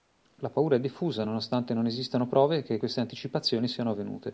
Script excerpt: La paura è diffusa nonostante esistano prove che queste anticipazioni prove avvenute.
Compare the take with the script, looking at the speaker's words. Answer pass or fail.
fail